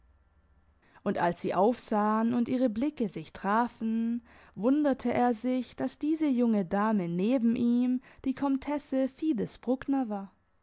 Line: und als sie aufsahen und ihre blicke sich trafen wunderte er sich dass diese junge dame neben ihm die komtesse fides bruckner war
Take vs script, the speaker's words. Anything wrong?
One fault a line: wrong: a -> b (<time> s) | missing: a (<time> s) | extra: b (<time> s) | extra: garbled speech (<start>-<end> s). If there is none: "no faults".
no faults